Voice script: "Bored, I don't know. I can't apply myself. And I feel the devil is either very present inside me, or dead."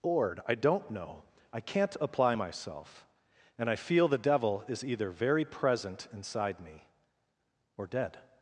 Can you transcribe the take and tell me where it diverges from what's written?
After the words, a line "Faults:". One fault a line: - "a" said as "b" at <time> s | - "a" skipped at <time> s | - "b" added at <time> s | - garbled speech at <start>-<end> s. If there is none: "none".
"Bored, I don't know. I can't apply myself. And I feel the devil is either very present inside me, or dead."
Faults:
none